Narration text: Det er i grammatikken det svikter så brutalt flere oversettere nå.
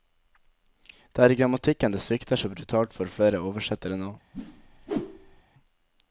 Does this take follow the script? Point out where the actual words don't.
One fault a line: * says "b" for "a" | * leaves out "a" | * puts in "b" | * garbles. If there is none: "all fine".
* puts in "for"